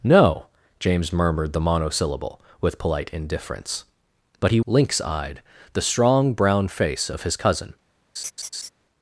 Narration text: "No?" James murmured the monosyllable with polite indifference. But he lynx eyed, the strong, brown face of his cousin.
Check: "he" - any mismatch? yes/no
no